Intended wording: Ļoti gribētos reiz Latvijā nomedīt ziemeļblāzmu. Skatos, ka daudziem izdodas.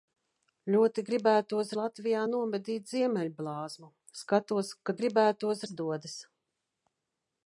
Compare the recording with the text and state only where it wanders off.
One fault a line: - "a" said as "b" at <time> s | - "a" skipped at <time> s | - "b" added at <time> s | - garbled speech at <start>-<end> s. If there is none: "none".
- "reiz" skipped at 1.7 s
- "daudziem" said as "gribētos" at 5.0 s